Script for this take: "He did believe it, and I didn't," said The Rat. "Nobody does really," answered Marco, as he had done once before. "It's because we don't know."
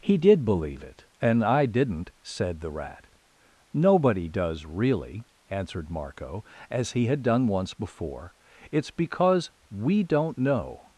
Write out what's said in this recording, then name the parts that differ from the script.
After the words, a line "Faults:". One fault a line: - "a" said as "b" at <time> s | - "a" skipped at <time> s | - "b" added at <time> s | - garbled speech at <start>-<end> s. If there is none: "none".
"He did believe it, and I didn't," said The Rat. "Nobody does really," answered Marco, as he had done once before. "It's because we don't know."
Faults:
none